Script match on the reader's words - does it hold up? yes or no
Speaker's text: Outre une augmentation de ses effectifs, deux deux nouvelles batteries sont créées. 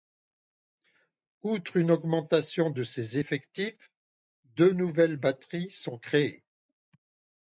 no